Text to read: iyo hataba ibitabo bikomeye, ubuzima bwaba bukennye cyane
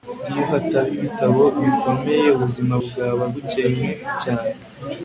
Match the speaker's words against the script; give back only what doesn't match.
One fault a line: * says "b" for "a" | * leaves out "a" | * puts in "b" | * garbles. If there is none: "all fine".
all fine